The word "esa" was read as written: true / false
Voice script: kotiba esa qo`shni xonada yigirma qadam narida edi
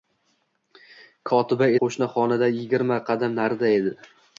false